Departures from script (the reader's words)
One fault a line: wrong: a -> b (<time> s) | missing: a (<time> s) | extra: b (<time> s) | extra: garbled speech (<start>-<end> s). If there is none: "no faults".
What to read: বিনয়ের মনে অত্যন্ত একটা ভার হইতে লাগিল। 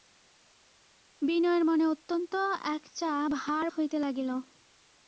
no faults